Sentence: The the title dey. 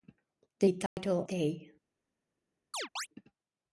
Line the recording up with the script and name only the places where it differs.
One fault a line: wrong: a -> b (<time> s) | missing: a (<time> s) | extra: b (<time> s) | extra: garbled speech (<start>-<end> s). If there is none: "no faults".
no faults